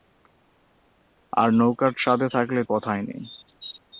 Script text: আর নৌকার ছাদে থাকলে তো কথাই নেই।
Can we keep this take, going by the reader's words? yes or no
no